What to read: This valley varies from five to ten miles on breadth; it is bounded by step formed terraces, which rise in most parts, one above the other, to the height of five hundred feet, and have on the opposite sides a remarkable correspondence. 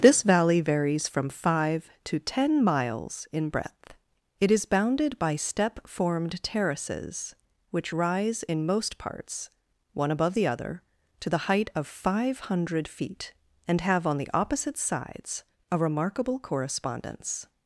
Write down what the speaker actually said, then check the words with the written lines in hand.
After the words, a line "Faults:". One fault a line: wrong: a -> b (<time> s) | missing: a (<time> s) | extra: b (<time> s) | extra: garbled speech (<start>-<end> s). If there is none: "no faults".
This valley varies from five to ten miles in breadth; it is bounded by step formed terraces, which rise in most parts, one above the other, to the height of five hundred feet, and have on the opposite sides a remarkable correspondence.
Faults:
wrong: on -> in (3.3 s)